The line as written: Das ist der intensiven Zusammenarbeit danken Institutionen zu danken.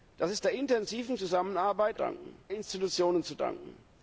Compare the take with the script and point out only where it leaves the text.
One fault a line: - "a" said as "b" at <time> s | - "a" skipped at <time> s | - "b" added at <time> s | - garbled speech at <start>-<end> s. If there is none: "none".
none